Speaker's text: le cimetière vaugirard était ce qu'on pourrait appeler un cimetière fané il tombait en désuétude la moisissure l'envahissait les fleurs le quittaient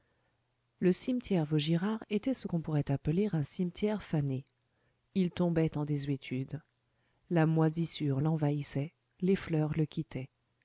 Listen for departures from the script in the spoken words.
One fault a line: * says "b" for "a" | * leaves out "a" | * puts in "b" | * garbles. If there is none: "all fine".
all fine